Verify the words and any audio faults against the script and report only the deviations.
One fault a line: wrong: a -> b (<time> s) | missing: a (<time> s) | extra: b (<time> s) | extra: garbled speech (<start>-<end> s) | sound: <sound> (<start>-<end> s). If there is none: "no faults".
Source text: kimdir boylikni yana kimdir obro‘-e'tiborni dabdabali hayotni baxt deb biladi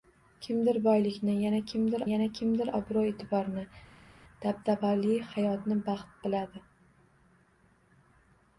extra: yana kimdir (2.1 s)
missing: deb (6.2 s)